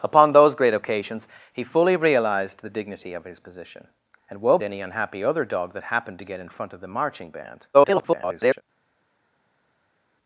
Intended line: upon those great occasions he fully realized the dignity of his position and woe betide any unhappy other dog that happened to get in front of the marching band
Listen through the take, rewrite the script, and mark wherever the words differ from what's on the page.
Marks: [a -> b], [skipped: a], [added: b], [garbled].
upon those great occasions he fully realized the dignity of his position and woe [skipped: betide] any unhappy other dog that happened to get in front of the marching band [garbled]